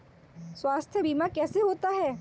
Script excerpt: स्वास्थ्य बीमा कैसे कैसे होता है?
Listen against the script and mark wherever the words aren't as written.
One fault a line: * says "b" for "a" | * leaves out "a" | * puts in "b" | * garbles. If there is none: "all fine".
* leaves out "कैसे"